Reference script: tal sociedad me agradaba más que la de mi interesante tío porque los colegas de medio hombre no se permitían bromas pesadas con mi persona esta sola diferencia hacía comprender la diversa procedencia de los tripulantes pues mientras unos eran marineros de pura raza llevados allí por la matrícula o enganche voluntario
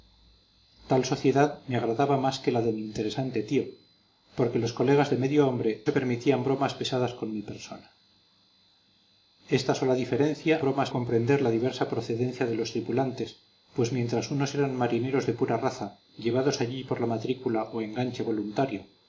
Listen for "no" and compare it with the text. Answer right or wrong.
wrong